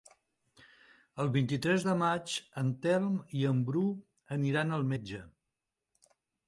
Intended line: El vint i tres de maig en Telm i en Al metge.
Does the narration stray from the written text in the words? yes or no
yes